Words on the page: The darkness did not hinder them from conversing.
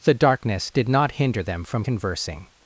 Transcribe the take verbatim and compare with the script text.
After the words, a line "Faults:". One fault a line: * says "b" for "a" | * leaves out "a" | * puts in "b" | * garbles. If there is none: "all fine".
The darkness did not hinder them from conversing.
Faults:
all fine